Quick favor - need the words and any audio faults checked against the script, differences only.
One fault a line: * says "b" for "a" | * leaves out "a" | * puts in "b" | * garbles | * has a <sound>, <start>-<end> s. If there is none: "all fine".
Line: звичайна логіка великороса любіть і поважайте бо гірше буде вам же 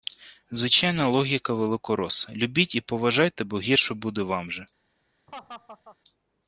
* has a laugh, 5.3-6.0 s